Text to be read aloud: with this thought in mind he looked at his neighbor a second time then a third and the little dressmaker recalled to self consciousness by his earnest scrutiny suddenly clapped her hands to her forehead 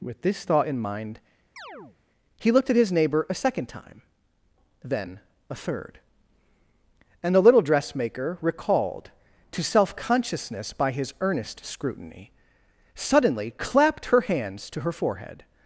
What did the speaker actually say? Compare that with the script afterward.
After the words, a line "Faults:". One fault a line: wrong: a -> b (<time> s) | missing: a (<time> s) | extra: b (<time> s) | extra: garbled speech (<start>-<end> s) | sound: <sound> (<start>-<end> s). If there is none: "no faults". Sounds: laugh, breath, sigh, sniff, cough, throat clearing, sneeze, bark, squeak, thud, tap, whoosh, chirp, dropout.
with this thought in mind he looked at his neighbor a second time then a third and the little dressmaker recalled to self consciousness by his earnest scrutiny suddenly clapped her hands to her forehead
Faults:
sound: chirp (1.6-2.0 s)